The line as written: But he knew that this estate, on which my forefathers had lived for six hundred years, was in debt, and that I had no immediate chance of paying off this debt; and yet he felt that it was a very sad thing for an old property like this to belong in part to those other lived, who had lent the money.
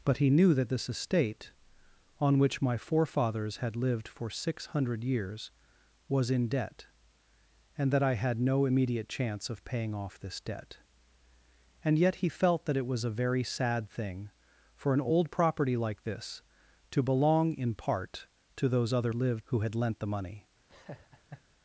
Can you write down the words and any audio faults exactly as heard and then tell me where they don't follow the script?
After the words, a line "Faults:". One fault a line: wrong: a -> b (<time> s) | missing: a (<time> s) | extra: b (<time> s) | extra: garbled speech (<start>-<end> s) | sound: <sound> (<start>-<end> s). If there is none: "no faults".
But he knew that this estate, on which my forefathers had lived for six hundred years, was in debt, and that I had no immediate chance of paying off this debt; and yet he felt that it was a very sad thing for an old property like this to belong in part to those other lived, who had lent the money.
Faults:
sound: laugh (20.7-21.4 s)